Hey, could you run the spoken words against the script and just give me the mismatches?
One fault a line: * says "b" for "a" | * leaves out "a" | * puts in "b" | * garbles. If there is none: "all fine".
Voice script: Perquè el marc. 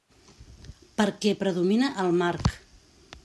* puts in "predomina"